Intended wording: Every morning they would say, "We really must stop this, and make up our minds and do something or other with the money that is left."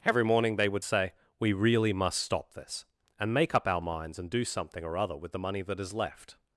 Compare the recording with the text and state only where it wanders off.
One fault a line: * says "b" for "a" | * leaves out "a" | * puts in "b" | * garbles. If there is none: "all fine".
all fine